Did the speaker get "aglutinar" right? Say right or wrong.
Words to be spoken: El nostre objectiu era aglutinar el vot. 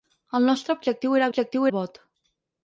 wrong